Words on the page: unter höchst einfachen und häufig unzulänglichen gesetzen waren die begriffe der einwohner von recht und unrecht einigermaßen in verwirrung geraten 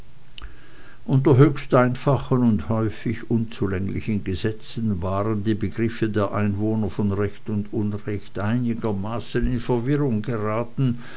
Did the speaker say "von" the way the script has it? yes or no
yes